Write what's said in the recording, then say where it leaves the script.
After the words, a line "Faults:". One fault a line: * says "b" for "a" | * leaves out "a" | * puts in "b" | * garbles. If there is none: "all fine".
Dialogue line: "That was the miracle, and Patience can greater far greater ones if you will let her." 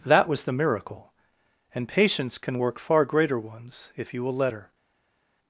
"That was the miracle, and Patience can work far greater ones if you will let her."
Faults:
* says "work" for "greater"